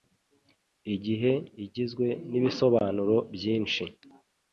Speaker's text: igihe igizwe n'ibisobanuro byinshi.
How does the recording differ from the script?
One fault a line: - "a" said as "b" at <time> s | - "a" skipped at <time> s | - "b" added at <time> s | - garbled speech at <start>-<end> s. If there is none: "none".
none